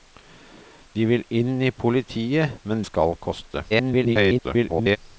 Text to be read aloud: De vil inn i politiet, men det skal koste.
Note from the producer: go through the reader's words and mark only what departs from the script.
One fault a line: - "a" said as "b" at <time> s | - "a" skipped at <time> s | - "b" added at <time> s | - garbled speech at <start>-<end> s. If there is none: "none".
- "det" skipped at 2.9 s
- garbled speech at 3.7-5.0 s